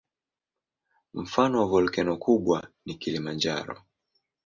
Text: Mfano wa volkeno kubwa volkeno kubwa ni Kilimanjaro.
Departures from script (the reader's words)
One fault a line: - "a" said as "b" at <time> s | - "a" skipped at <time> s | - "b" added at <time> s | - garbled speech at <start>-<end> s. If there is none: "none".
- "volkeno kubwa" skipped at 2.7 s